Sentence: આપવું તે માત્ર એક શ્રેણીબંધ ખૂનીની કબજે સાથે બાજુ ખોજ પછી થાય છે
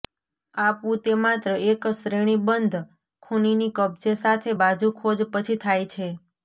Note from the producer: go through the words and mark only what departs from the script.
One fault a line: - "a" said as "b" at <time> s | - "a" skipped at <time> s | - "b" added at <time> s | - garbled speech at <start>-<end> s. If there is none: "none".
none